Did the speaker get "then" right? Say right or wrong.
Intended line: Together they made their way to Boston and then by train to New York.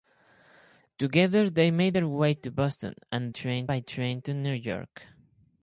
wrong